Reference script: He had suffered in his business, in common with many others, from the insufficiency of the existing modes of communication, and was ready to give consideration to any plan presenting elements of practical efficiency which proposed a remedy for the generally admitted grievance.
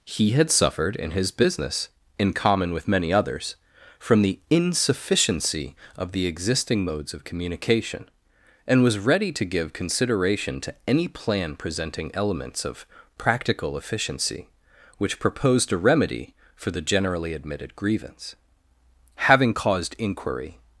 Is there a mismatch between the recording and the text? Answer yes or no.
yes